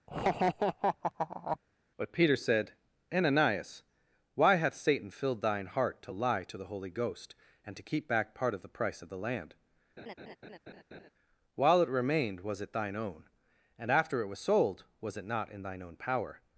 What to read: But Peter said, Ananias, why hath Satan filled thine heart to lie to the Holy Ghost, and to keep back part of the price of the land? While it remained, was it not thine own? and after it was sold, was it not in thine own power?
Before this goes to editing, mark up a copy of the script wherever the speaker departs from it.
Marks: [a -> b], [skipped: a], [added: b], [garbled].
But Peter said, Ananias, why hath Satan filled thine heart to lie to the Holy Ghost, and to keep back part of the price of the land? While it remained, was it [skipped: not] thine own? and after it was sold, was it not in thine own power?